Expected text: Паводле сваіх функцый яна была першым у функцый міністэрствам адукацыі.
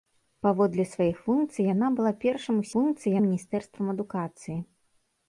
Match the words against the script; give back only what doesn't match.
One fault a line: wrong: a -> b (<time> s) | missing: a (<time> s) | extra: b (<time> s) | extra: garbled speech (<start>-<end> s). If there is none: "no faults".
no faults